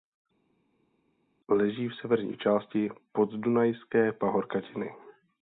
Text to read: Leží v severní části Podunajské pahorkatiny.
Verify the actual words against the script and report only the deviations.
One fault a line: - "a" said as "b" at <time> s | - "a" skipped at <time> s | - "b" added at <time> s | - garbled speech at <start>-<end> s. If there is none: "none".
none